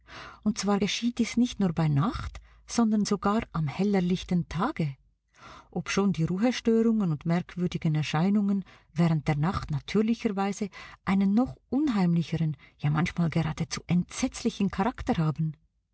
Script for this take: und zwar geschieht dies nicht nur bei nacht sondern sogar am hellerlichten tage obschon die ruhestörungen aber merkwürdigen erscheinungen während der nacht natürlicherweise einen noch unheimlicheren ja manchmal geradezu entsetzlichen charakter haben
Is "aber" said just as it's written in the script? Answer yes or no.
no